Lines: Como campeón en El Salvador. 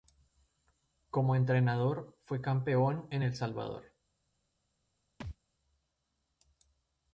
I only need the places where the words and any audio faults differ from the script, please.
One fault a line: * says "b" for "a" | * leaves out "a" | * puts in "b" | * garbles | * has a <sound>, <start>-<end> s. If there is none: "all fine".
* puts in "entrenador fue"
* has a thud, 5.2-5.4 s